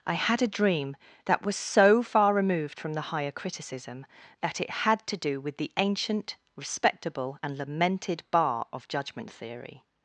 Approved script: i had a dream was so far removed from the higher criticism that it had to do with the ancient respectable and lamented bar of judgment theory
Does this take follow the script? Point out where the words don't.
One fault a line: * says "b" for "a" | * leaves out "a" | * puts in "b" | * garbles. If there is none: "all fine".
* puts in "that"